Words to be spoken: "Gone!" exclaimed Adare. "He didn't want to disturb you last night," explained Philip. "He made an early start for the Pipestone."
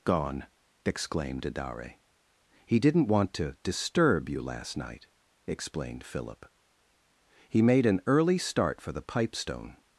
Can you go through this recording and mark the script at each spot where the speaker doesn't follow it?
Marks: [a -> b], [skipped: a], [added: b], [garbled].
"Gone!" exclaimed Adare. "He didn't want to disturb you last night," explained Philip. "He made an early start for the Pipestone."